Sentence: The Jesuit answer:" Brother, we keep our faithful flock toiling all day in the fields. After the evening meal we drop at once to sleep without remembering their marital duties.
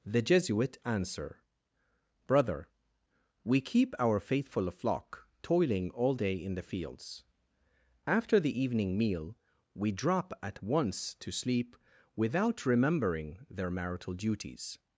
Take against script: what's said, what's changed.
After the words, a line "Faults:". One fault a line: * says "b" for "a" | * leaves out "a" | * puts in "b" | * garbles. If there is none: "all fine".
The Jesuit answer:" Brother, we keep our faithful flock toiling all day in the fields. After the evening meal we drop at once to sleep without remembering their marital duties.
Faults:
all fine